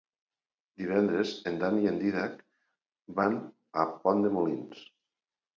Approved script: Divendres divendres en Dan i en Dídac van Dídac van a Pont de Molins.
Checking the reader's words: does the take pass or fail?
fail